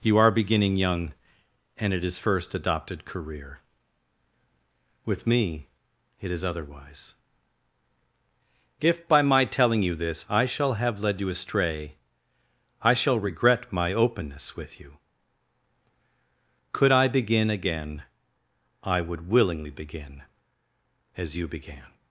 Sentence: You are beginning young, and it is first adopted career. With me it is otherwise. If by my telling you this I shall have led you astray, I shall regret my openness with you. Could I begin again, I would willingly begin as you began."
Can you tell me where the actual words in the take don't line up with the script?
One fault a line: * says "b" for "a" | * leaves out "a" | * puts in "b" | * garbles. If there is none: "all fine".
all fine